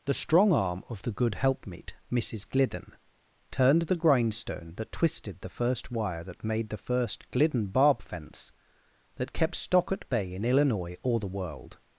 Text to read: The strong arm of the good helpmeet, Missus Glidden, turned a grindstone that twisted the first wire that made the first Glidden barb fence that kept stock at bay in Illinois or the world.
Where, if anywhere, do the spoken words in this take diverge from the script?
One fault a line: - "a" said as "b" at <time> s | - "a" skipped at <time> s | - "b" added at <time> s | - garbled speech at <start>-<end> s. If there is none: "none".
- "a" said as "the" at 3.8 s